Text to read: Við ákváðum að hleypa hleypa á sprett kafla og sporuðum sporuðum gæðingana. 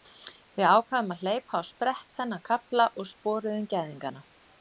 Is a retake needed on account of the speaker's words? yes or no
yes